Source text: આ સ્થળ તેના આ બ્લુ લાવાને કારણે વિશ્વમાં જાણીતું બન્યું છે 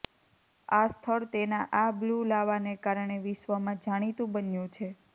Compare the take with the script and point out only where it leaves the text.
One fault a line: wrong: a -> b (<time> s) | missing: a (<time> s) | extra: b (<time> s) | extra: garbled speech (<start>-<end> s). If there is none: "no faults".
no faults